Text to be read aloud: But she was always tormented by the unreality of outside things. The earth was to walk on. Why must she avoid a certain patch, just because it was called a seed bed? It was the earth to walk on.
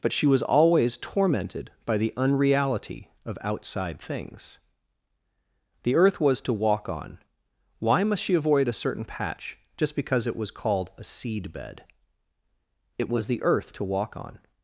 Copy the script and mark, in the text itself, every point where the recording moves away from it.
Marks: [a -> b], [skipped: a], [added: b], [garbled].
But she was always tormented by the unreality of outside things. The earth was to walk on. Why must she avoid a certain patch, just because it was called a seed bed? It was the earth to walk on.